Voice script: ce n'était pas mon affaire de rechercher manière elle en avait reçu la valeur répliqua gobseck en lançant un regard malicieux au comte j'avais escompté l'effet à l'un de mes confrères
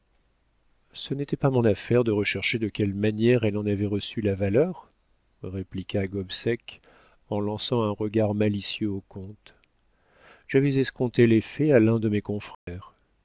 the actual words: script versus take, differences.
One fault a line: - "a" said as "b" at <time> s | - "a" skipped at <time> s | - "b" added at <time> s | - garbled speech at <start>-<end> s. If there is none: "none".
- "de quelle" added at 2.6 s